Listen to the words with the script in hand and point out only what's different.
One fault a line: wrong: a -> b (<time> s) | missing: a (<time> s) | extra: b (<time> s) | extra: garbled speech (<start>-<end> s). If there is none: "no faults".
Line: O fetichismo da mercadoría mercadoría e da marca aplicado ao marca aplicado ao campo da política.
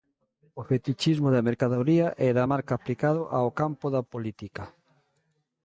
missing: mercadoría (2.1 s)
missing: marca aplicado ao (3.5 s)